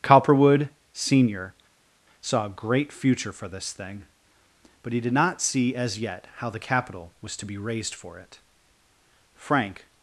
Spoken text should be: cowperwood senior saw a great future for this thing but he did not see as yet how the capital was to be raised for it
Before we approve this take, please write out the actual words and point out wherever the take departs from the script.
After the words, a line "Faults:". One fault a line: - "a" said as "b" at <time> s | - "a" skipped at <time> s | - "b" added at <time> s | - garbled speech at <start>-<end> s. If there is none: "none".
cowperwood senior saw a great future for this thing but he did not see as yet how the capital was to be raised for it frank
Faults:
- "frank" added at 9.3 s